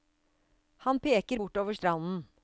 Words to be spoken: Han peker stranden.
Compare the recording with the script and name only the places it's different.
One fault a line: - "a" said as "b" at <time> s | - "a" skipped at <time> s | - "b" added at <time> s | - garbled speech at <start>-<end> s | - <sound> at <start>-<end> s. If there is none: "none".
- "bortover" added at 1.3 s